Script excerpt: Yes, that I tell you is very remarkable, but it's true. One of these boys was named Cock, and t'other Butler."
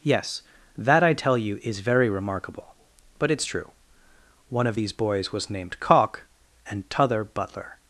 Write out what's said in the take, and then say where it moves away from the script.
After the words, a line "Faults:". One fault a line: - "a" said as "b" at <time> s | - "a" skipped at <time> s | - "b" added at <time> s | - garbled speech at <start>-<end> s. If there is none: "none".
Yes, that I tell you is very remarkable, but it's true. One of these boys was named Cock, and t'other Butler."
Faults:
none